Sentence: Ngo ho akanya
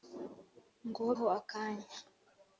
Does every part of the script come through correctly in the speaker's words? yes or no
yes